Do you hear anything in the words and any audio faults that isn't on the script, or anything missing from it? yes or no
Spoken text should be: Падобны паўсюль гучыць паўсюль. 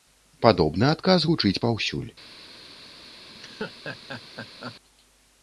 yes